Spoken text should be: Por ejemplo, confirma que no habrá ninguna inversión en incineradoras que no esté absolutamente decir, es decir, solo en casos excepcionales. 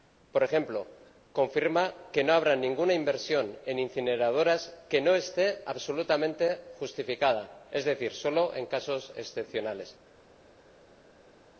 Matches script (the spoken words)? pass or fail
fail